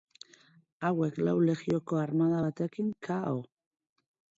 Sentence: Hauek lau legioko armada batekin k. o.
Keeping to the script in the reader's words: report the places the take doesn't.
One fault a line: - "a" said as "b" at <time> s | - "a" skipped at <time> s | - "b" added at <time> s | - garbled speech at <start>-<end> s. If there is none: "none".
none